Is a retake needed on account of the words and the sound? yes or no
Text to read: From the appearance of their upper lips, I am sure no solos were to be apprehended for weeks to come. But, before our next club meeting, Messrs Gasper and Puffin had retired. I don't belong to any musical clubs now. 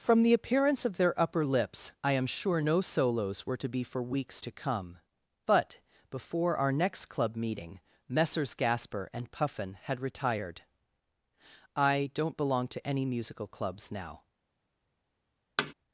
yes